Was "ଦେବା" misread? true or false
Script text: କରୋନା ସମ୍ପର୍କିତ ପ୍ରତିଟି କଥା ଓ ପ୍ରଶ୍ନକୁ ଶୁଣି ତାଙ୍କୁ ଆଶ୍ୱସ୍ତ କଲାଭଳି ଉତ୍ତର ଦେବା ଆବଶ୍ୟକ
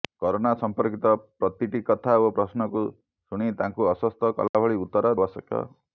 true